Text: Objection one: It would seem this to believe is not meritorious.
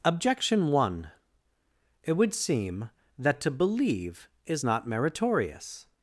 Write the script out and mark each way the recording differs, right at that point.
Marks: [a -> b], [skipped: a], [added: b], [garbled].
Objection one: It would seem [this -> that] to believe is not meritorious.